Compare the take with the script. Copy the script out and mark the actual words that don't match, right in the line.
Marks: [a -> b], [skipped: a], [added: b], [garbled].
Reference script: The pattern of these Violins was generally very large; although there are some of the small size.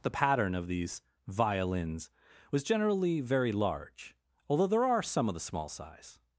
The pattern of these Violins was generally very large; although there are some of the small size.